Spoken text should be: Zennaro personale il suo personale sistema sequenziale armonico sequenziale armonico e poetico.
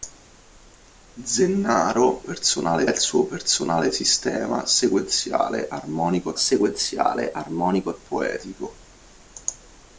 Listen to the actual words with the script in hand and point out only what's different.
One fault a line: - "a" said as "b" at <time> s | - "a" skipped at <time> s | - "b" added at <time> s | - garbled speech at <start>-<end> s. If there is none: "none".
none